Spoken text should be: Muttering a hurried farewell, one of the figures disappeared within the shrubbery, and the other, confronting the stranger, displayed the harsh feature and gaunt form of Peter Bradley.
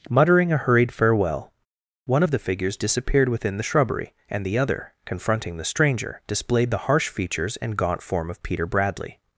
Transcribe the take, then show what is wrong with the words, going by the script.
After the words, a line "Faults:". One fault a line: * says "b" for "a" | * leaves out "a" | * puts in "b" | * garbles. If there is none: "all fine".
Muttering a hurried farewell, one of the figures disappeared within the shrubbery, and the other, confronting the stranger, displayed the harsh features and gaunt form of Peter Bradley.
Faults:
* says "features" for "feature"